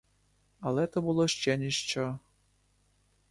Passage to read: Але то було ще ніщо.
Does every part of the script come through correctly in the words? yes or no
yes